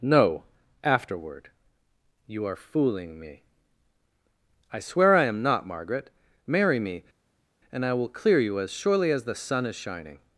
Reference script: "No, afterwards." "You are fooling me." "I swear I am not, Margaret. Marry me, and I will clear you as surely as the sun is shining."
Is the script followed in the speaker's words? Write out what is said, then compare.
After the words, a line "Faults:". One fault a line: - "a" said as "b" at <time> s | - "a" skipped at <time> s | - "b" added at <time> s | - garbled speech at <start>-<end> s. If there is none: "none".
"No, afterward." "You are fooling me." "I swear I am not, Margaret. Marry me, and I will clear you as surely as the sun is shining."
Faults:
- "afterwards" said as "afterward" at 0.8 s